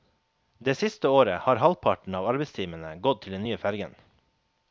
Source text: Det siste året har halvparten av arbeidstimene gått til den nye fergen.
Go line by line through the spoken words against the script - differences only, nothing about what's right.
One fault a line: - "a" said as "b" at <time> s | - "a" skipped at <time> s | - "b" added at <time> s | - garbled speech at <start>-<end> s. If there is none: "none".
none